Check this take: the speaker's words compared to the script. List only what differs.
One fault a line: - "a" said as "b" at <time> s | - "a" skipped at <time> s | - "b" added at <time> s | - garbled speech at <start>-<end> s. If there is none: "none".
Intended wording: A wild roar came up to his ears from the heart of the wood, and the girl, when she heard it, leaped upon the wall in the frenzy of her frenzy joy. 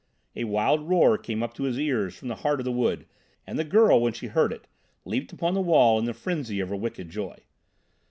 - "frenzy" said as "wicked" at 6.8 s